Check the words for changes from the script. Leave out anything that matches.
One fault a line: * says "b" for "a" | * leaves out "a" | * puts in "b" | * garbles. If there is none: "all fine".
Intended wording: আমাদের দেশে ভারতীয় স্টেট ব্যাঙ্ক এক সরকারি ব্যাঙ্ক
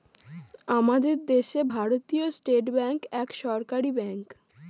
all fine